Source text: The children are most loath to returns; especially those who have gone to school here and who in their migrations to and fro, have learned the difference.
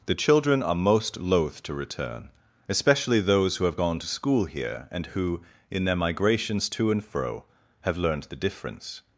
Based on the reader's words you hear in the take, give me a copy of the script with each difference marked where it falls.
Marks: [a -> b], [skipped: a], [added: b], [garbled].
The children are most loath to [returns; -> return] especially those who have gone to school here and who in their migrations to and fro, have learned the difference.